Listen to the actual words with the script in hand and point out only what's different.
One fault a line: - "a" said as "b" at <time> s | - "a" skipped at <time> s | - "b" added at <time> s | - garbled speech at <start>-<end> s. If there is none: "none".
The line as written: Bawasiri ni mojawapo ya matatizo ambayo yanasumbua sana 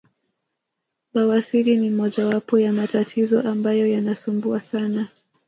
none